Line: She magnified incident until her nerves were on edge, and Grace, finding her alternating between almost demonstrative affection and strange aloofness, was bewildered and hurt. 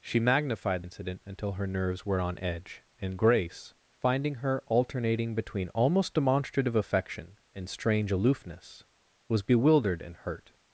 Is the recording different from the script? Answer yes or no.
no